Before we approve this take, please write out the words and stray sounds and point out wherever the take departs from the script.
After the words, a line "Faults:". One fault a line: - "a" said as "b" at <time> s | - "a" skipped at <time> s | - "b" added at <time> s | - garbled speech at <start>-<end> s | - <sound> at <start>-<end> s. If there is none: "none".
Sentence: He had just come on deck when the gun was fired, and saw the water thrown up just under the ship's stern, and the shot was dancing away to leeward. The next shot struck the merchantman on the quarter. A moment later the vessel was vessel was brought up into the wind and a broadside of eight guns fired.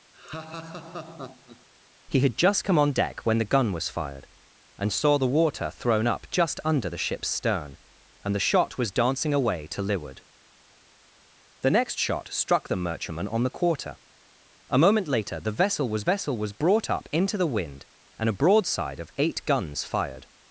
He had just come on deck when the gun was fired, and saw the water thrown up just under the ship's stern, and the shot was dancing away to leeward. The next shot struck the merchantman on the quarter. A moment later the vessel was vessel was brought up into the wind and a broadside of eight guns fired.
Faults:
- laugh at 0.1-1.7 s